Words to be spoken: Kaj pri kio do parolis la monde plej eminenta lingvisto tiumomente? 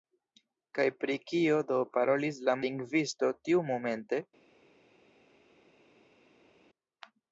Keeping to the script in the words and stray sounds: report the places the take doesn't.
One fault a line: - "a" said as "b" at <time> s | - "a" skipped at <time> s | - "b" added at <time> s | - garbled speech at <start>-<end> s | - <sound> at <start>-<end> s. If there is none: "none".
- "monde plej eminenta" skipped at 2.6 s